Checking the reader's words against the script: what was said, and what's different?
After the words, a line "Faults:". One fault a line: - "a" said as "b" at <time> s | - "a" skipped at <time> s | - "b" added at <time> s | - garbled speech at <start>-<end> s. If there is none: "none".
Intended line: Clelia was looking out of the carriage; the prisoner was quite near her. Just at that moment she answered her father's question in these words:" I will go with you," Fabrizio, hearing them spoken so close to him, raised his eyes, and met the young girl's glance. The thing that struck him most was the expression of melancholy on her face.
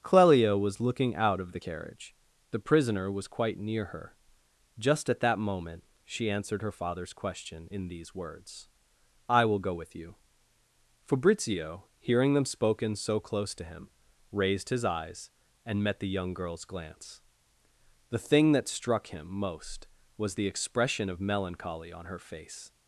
Clelia was looking out of the carriage; the prisoner was quite near her. Just at that moment she answered her father's question in these words:" I will go with you," Fabrizio, hearing them spoken so close to him, raised his eyes, and met the young girl's glance. The thing that struck him most was the expression of melancholy on her face.
Faults:
none